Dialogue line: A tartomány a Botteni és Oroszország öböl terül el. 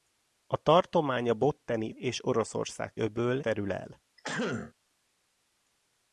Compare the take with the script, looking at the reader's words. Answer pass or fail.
pass